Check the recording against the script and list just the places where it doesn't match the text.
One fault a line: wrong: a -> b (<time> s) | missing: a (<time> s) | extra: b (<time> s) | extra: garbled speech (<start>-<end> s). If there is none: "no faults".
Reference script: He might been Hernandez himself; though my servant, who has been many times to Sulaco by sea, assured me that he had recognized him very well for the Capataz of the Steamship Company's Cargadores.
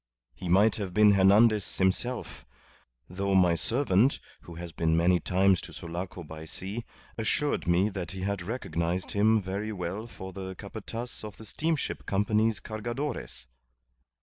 extra: have (0.8 s)